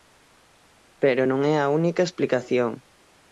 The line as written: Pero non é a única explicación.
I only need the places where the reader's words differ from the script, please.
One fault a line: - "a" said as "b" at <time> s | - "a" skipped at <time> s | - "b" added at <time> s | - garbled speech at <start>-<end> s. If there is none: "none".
none